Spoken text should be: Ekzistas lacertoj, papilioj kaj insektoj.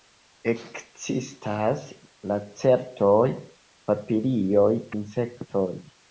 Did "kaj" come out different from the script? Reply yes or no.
yes